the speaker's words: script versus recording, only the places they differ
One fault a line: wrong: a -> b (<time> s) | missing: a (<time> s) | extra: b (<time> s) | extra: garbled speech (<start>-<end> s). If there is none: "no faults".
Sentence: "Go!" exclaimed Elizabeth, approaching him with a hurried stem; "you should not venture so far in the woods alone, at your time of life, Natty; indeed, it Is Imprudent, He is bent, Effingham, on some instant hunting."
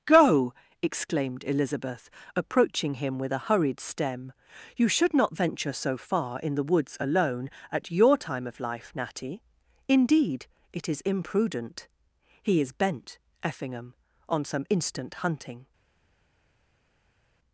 no faults